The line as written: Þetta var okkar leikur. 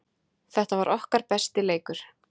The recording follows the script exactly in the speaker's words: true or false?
false